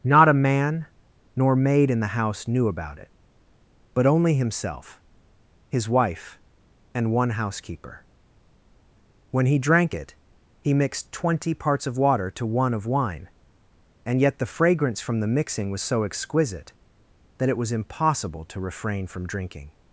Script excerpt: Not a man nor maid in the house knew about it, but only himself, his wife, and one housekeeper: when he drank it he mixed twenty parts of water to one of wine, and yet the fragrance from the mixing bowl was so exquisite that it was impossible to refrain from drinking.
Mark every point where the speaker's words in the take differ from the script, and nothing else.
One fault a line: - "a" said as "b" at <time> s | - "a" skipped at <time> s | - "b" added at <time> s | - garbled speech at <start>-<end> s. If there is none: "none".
- "bowl" skipped at 15.7 s